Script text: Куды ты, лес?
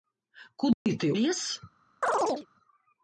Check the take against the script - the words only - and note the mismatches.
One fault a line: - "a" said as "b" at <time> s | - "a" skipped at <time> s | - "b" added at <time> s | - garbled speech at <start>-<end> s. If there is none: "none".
none